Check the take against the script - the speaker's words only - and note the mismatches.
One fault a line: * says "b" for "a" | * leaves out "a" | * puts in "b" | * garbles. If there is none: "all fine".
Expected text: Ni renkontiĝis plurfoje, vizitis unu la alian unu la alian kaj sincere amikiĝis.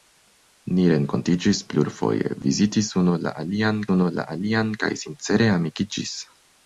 all fine